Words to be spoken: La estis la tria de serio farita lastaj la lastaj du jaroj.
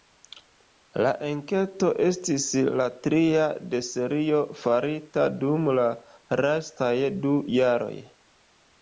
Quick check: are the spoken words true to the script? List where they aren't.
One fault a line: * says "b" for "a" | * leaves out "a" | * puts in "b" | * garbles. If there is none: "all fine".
* puts in "enketo"
* says "dum" for "lastaj"